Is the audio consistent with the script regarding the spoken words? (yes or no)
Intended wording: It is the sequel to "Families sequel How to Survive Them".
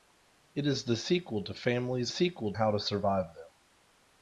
yes